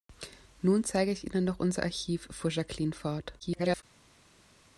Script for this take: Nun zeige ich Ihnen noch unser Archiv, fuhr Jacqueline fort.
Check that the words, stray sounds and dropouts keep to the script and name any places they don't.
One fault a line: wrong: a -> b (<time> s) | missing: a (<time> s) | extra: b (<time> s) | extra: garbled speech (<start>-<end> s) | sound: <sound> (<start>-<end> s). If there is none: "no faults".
extra: garbled speech (3.4-3.8 s)